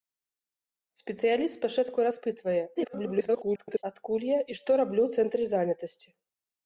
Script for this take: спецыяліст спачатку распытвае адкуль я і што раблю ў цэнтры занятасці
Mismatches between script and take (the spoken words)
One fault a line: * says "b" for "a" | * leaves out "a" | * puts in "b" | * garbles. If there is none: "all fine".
* garbles